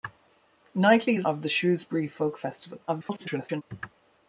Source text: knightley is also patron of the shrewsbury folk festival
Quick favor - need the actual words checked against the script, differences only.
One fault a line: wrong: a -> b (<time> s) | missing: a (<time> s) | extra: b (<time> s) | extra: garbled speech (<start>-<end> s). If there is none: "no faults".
missing: also patron (1.3 s)
extra: garbled speech (2.9-3.6 s)